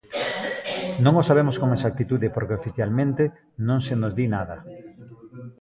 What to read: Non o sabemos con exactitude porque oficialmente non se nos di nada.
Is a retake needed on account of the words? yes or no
no